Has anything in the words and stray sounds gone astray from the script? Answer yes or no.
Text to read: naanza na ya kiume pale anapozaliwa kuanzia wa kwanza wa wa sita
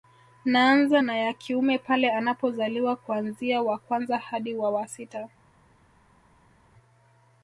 yes